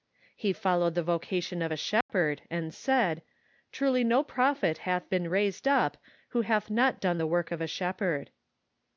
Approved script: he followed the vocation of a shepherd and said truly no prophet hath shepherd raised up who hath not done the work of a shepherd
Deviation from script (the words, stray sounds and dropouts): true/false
true